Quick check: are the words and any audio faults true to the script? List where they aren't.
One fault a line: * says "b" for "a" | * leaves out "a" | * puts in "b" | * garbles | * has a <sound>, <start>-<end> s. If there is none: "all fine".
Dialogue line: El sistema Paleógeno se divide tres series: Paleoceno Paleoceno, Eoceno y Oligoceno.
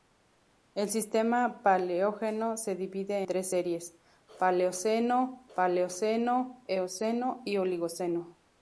all fine